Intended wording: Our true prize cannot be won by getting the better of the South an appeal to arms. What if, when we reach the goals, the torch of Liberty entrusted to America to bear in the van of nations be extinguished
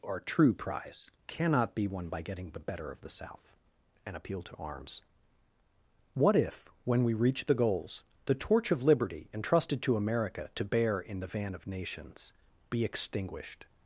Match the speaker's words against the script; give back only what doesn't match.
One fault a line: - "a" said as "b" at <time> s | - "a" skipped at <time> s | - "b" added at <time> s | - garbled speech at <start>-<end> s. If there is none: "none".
none